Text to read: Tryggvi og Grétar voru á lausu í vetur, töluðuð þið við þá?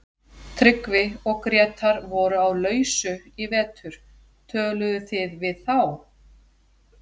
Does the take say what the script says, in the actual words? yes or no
yes